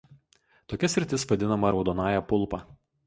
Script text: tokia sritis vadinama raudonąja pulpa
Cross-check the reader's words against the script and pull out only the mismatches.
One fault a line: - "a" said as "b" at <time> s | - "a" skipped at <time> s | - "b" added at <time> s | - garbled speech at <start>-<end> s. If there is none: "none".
none